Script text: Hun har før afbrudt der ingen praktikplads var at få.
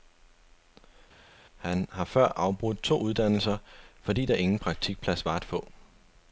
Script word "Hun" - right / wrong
wrong